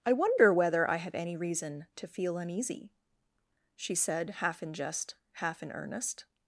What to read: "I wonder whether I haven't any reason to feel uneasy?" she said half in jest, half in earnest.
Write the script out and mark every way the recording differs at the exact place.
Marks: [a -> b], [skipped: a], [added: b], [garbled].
"I wonder whether I [haven't -> have] any reason to feel uneasy?" she said half in jest, half in earnest.